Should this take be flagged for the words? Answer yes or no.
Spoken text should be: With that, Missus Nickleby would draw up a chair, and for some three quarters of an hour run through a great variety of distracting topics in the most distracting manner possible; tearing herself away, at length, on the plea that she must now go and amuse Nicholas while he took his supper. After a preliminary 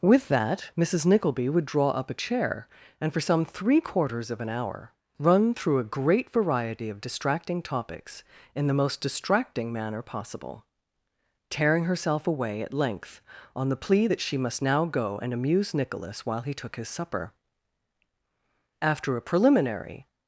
no